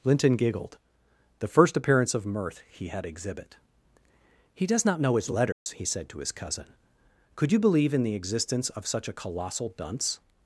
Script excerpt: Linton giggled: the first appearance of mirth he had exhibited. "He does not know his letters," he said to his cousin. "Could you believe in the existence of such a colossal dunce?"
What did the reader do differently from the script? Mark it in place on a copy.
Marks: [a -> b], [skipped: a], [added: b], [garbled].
Linton giggled: the first appearance of mirth he had [exhibited. -> exhibit] "He does not know his letters," he said to his cousin. "Could you believe in the existence of such a colossal dunce?"